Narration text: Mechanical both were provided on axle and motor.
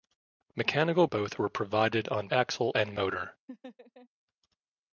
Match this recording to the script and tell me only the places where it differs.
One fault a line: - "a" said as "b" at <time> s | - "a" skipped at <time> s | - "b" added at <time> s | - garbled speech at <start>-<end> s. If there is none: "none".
none